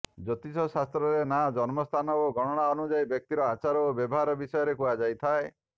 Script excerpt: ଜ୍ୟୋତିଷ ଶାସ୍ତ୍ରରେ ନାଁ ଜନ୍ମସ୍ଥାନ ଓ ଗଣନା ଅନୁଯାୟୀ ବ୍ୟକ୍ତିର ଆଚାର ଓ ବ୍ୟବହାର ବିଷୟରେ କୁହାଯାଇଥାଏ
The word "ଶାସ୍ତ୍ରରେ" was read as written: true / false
true